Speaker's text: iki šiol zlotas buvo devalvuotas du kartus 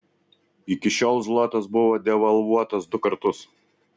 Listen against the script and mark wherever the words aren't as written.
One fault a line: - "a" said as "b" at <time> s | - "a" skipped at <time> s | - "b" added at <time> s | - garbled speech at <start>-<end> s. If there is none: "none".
none